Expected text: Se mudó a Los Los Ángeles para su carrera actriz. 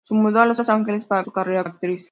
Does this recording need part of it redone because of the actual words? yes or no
no